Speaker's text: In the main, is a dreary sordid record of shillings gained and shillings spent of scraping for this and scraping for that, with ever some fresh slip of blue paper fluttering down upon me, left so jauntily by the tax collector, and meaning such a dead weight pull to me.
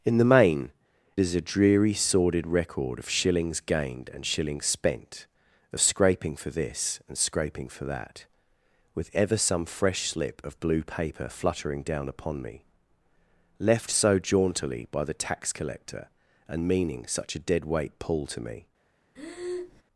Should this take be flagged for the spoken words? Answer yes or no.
no